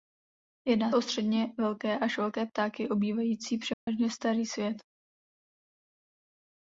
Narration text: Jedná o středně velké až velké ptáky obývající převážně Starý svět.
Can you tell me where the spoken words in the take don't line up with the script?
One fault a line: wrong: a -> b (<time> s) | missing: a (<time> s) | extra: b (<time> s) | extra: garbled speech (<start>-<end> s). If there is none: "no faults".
no faults